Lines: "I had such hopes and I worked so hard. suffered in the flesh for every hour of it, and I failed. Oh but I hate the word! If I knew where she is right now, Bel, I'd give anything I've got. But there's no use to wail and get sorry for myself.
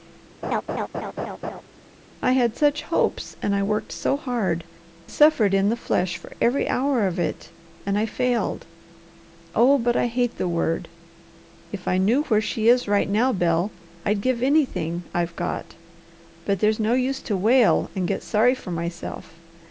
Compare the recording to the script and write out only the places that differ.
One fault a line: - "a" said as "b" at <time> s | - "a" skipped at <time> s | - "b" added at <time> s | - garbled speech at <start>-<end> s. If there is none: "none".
none